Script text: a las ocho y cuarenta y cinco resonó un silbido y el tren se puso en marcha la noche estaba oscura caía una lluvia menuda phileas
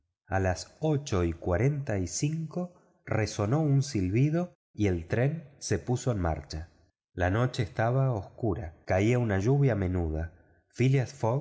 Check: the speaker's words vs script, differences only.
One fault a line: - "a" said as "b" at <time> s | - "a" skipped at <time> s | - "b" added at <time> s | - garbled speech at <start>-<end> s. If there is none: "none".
none